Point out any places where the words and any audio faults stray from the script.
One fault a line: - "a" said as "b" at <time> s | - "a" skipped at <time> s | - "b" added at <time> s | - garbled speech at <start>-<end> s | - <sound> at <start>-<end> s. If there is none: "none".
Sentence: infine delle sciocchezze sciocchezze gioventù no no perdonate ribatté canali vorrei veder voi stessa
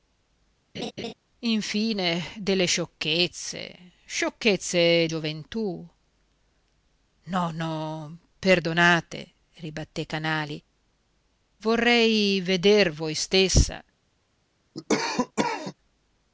- laugh at 0.7-1.1 s
- cough at 14.7-15.7 s